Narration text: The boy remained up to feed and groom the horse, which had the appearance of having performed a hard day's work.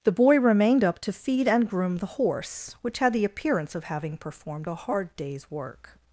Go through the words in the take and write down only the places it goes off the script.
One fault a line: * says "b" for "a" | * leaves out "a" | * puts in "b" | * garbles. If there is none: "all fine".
all fine